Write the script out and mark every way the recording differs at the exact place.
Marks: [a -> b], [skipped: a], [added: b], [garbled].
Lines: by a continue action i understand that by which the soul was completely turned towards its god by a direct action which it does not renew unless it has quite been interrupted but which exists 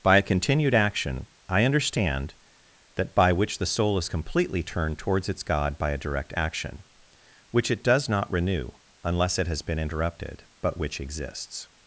by a [continue -> continued] action i understand that by which the soul [was -> is] completely turned towards its god by a direct action which it does not renew unless it has [skipped: quite] been interrupted but which exists